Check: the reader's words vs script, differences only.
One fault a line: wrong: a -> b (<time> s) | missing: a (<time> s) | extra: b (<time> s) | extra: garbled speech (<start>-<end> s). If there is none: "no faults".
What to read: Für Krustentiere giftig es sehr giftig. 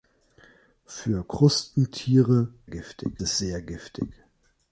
no faults